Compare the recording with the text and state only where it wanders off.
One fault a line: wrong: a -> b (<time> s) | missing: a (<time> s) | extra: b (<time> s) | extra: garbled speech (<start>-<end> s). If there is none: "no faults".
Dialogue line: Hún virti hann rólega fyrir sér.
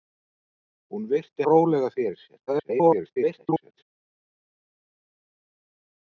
missing: hann (1.4 s)
extra: garbled speech (2.5-3.8 s)